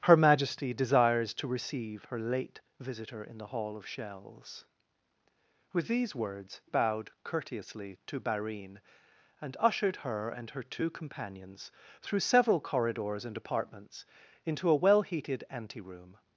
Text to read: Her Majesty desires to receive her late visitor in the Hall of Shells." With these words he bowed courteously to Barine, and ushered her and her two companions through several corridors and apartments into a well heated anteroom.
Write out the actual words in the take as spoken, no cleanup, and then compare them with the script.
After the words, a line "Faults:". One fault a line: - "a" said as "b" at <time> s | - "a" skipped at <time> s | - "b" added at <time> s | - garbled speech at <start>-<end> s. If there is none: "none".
Her Majesty desires to receive her late visitor in the Hall of Shells." With these words bowed courteously to Barine, and ushered her and her two companions through several corridors and apartments into a well heated anteroom.
Faults:
- "he" skipped at 6.6 s